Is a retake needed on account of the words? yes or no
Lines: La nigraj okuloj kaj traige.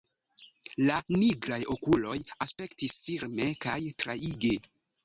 yes